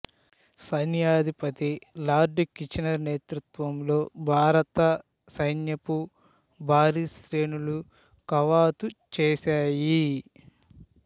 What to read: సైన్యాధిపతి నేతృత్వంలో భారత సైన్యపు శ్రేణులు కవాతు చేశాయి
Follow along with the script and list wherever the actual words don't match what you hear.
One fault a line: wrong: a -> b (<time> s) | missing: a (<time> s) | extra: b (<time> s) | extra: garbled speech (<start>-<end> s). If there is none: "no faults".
extra: లార్డ్ కిచనర్ (2.1 s)
extra: భారీ (6.6 s)